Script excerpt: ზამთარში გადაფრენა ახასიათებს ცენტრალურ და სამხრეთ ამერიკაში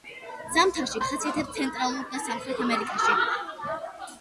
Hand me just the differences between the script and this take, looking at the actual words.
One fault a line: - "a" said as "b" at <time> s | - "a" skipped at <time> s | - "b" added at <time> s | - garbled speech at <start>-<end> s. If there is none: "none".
- "გადაფრენა" skipped at 1.0 s